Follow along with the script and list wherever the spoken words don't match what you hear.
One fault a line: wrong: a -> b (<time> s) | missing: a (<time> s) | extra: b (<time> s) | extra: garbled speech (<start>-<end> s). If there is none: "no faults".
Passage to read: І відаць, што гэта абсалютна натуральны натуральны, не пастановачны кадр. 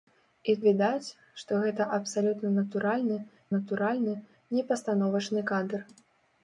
no faults